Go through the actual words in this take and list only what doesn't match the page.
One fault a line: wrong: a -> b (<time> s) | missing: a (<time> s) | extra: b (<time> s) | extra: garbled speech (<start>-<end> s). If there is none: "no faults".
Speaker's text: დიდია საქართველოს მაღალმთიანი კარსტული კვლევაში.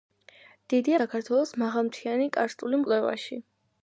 no faults